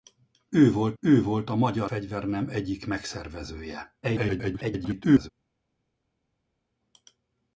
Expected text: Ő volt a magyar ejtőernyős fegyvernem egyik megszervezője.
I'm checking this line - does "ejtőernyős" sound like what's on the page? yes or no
no